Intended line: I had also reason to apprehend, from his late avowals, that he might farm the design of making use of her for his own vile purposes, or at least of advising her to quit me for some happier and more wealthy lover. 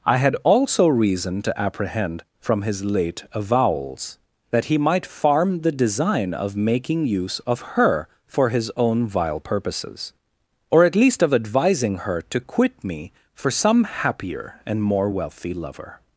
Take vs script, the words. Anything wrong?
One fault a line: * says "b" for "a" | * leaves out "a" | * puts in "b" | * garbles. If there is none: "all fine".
all fine